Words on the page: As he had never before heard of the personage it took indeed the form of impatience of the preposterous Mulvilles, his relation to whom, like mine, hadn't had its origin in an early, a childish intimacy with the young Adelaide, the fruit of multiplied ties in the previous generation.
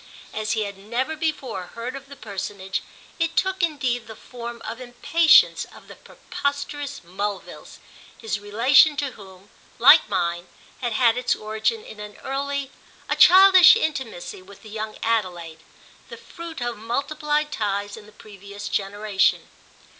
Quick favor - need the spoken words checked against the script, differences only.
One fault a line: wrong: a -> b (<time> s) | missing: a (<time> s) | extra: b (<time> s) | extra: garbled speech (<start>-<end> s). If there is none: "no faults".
wrong: hadn't -> had (10.8 s)